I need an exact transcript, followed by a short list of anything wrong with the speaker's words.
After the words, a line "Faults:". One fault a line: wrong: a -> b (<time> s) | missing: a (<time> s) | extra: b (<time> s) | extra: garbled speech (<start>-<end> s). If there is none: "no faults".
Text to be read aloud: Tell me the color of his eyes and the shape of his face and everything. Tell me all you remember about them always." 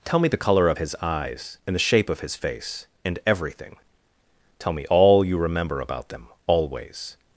Tell me the color of his eyes and the shape of his face and everything. Tell me all you remember about them always."
Faults:
no faults